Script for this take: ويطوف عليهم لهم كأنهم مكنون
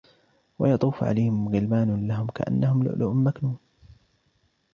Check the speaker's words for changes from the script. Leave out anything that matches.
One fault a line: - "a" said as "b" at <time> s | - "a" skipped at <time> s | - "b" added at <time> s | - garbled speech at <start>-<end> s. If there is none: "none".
- "غلمان" added at 1.5 s
- "لؤلؤ" added at 2.8 s